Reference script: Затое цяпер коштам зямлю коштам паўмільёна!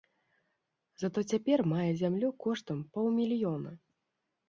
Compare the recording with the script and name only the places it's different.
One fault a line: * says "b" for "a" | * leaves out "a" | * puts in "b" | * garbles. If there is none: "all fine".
* says "мае" for "коштам"